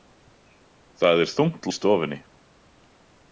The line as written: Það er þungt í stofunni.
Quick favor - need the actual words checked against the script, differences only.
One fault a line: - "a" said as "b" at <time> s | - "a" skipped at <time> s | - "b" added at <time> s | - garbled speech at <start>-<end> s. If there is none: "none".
none